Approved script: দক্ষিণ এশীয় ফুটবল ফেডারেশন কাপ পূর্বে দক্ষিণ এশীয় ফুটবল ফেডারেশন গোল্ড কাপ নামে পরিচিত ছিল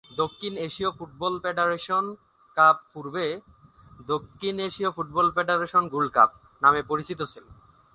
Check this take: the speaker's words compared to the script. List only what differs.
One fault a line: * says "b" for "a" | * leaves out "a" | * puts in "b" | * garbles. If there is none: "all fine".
all fine